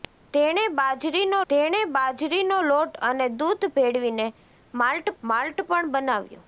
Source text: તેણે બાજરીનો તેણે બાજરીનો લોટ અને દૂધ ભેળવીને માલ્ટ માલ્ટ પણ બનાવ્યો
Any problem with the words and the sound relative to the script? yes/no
no